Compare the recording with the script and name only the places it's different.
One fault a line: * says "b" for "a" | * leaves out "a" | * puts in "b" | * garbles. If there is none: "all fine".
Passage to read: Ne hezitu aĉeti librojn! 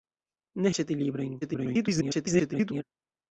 * leaves out "hezitu"
* garbles